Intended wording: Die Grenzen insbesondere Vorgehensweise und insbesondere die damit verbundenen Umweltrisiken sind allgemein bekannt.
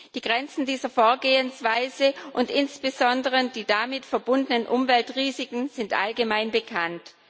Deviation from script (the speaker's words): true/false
true